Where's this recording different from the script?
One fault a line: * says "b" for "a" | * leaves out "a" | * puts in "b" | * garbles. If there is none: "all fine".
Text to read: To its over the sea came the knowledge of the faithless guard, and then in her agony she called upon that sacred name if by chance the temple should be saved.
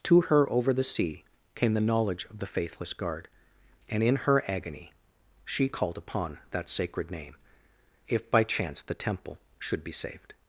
* says "her" for "its"
* leaves out "then"